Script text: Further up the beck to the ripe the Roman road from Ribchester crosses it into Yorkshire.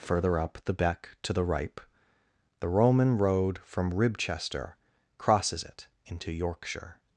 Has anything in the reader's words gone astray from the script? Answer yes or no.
no